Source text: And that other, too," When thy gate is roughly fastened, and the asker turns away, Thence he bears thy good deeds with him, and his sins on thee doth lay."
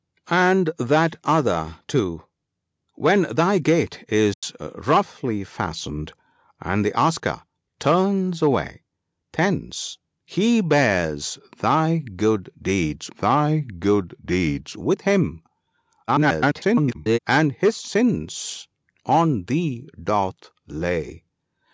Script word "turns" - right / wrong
right